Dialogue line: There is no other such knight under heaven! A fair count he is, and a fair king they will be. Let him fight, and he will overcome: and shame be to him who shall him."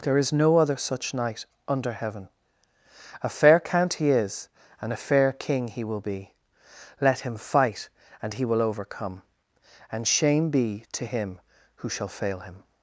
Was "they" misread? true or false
true